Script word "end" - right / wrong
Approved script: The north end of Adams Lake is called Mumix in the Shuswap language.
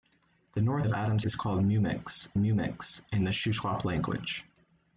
wrong